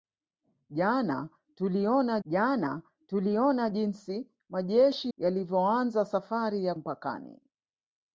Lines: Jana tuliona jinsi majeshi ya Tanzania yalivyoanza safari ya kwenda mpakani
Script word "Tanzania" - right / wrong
wrong